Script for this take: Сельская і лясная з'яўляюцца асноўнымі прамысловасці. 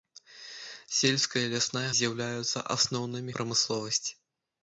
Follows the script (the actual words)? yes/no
yes